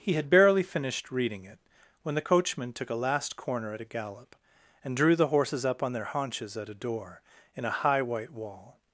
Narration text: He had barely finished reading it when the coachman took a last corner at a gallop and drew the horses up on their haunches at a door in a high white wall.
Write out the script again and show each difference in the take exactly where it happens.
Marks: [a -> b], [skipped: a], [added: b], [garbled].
He had barely finished reading it when the coachman took a last corner at a gallop and drew the horses up on their haunches at a door in a high white wall.